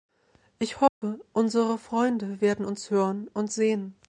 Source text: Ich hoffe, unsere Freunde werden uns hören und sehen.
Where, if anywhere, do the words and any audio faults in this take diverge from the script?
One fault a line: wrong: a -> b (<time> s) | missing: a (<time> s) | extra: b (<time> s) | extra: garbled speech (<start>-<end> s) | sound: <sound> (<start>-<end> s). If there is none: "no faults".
sound: dropout (0.9-1.0 s)